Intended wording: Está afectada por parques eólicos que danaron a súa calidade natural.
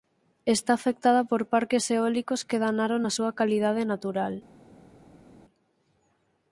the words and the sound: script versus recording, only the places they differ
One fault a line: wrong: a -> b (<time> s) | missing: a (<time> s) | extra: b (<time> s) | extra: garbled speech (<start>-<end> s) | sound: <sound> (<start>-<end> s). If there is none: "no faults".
no faults